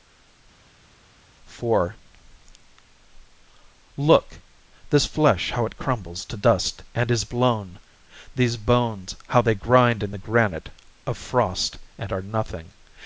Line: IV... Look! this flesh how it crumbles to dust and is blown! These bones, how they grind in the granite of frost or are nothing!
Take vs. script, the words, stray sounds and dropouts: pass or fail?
fail